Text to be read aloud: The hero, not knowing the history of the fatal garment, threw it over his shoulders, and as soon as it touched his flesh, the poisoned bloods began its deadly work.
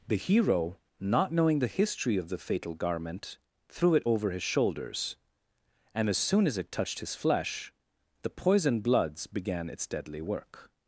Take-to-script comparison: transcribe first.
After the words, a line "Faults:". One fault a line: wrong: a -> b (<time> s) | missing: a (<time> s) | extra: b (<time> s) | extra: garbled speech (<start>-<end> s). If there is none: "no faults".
The hero, not knowing the history of the fatal garment, threw it over his shoulders, and as soon as it touched his flesh, the poisoned bloods began its deadly work.
Faults:
no faults